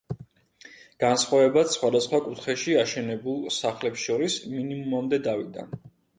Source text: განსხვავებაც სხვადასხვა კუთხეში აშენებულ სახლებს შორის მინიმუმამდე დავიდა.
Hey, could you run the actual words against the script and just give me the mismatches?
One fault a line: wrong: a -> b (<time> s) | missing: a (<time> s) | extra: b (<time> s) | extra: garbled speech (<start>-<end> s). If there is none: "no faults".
no faults